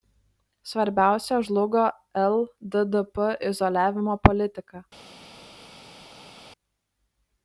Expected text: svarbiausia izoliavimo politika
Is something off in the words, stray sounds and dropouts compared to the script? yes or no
yes